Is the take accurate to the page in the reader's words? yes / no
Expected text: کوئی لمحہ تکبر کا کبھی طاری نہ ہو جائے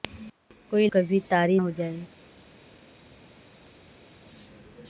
no